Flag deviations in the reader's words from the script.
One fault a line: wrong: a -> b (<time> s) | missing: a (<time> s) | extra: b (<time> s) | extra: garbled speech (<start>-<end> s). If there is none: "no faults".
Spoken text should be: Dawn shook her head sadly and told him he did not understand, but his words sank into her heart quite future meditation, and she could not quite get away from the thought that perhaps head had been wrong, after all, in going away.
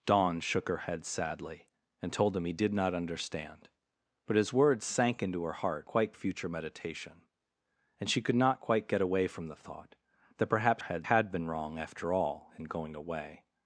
no faults